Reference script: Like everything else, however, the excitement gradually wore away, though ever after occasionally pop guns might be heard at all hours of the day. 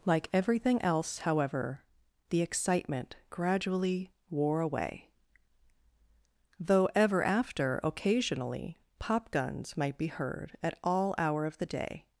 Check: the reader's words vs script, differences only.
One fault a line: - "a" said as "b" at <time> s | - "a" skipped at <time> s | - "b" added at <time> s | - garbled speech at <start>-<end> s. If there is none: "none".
- "hours" said as "hour" at 11.2 s